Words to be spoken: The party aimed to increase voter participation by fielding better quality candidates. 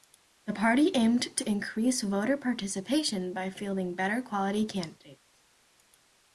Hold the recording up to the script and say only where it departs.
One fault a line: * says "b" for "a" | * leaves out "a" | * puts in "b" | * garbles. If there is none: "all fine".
all fine